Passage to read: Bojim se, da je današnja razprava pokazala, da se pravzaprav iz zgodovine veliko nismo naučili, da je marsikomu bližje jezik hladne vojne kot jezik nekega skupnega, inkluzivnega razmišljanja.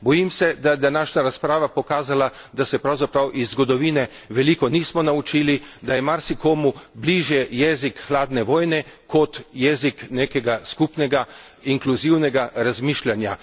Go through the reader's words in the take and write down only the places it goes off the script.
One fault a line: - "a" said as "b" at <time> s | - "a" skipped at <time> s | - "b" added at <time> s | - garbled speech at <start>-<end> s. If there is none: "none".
none